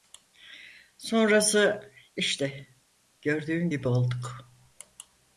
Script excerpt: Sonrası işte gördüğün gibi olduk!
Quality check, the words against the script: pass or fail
pass